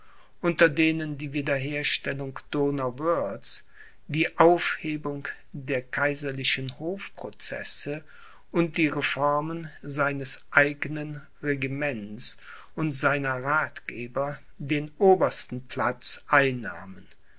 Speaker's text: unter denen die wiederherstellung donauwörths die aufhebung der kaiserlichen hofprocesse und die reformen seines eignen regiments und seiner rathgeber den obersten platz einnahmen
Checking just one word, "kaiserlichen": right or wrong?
right